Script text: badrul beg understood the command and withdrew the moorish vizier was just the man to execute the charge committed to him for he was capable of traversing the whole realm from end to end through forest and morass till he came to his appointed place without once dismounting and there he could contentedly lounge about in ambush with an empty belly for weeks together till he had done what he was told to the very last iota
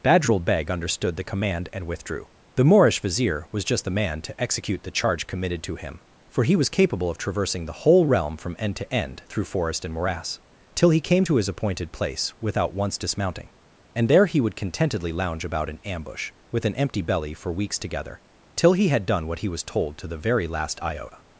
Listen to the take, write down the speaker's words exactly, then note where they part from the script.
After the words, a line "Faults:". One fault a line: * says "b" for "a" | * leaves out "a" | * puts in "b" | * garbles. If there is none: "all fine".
badrul beg understood the command and withdrew the moorish vizier was just the man to execute the charge committed to him for he was capable of traversing the whole realm from end to end through forest and morass till he came to his appointed place without once dismounting and there he would contentedly lounge about in ambush with an empty belly for weeks together till he had done what he was told to the very last iota
Faults:
* says "would" for "could"